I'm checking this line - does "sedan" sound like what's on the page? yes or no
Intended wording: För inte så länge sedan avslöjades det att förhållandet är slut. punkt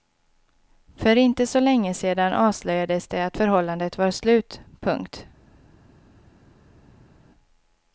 yes